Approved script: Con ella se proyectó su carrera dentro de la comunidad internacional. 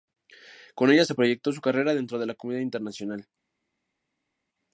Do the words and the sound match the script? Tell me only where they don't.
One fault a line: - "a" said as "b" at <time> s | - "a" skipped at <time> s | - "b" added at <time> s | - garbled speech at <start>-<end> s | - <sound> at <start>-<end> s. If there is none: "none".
none